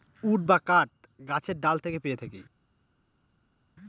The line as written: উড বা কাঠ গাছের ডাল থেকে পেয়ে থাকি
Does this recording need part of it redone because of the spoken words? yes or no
no